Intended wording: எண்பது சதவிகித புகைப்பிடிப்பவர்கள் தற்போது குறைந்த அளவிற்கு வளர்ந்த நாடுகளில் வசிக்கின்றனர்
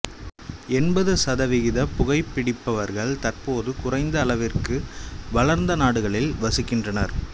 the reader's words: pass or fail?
pass